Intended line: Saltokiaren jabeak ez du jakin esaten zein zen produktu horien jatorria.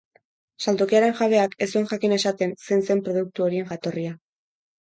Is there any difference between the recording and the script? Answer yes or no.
yes